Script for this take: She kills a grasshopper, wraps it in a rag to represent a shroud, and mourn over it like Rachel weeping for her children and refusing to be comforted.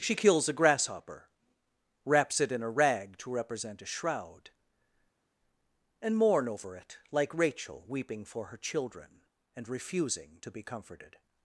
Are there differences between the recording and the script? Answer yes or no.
no